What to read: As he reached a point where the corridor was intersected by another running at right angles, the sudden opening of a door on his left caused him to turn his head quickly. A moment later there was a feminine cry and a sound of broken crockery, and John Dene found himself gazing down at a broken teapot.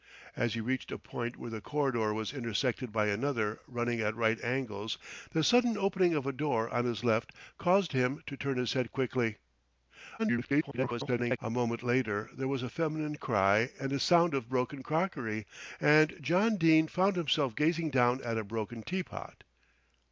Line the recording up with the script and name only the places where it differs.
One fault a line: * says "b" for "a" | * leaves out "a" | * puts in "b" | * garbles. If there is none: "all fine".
* garbles